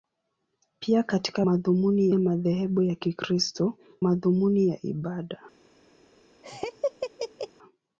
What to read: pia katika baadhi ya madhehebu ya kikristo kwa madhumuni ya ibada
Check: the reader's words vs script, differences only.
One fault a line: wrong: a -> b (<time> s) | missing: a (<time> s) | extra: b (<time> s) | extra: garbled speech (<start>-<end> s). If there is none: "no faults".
wrong: baadhi -> madhumuni (1.4 s)
missing: kwa (3.8 s)